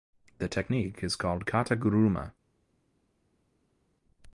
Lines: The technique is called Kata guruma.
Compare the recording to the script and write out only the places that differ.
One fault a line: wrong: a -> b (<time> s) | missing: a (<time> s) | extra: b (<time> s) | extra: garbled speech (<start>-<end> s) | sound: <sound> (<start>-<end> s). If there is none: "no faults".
no faults